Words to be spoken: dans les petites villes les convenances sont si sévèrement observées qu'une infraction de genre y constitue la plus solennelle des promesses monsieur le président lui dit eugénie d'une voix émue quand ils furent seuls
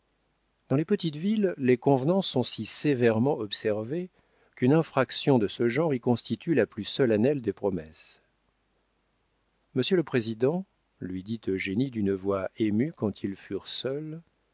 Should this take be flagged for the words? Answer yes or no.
yes